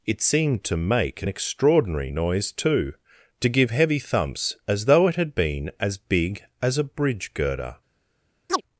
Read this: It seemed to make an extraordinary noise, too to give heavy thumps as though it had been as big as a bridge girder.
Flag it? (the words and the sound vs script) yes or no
yes